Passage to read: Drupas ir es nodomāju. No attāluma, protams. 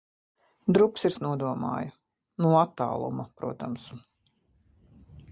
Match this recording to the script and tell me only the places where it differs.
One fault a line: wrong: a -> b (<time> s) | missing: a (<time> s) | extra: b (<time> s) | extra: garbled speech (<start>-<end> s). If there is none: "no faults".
no faults